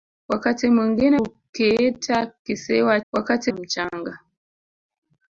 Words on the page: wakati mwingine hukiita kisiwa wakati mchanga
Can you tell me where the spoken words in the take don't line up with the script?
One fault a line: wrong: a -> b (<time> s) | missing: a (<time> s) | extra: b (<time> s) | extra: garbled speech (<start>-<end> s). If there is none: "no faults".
no faults